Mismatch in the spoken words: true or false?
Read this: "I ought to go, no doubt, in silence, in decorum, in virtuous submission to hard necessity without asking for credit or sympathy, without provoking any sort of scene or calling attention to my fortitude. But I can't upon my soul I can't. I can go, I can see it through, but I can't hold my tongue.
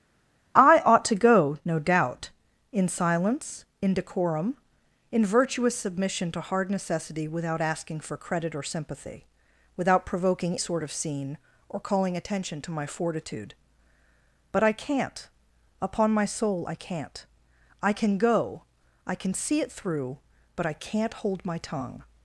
true